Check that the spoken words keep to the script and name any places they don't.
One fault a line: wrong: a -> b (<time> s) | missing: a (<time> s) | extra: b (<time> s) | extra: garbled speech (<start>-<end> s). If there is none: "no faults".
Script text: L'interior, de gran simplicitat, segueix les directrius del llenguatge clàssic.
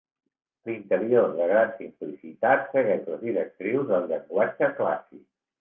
no faults